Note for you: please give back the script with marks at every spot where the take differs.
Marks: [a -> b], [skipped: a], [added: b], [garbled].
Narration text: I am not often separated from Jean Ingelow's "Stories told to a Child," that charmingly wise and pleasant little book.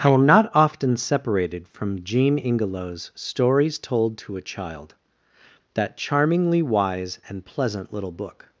I am not often separated from Jean Ingelow's "Stories told to a Child," that charmingly wise and pleasant little book.